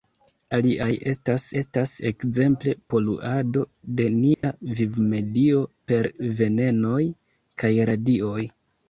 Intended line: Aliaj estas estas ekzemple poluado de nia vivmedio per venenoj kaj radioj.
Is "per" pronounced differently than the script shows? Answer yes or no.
no